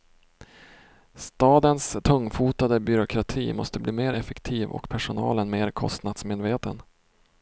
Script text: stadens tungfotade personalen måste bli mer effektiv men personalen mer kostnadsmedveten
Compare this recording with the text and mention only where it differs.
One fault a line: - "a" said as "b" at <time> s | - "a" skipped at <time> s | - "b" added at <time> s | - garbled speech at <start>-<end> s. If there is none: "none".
- "personalen" said as "byråkrati" at 2.8 s
- "men" said as "och" at 4.7 s